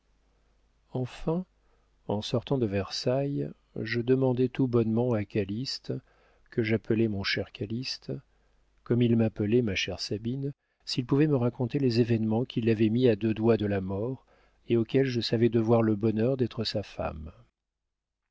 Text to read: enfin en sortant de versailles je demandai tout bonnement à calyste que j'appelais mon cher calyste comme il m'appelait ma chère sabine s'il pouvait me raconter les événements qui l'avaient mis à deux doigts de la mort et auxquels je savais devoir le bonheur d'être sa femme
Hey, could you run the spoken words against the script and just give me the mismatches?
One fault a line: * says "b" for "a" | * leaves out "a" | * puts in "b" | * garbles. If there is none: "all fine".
all fine